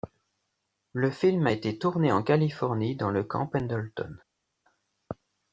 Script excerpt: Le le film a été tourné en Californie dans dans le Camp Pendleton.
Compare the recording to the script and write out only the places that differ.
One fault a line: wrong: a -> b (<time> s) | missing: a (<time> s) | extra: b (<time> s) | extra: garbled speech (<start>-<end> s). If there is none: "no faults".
missing: le (1.1 s)
missing: dans (3.1 s)